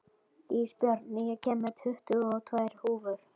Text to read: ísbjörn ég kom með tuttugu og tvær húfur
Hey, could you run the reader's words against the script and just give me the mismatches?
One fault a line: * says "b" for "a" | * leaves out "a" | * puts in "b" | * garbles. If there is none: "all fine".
all fine